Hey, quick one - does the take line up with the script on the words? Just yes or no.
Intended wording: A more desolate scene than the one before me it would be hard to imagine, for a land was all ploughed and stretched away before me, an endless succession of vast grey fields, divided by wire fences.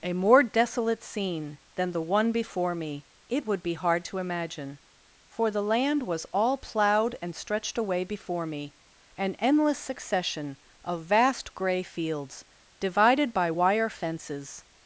no